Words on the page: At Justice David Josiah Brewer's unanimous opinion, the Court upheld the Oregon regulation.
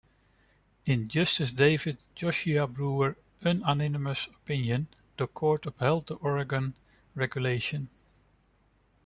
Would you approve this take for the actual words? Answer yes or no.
no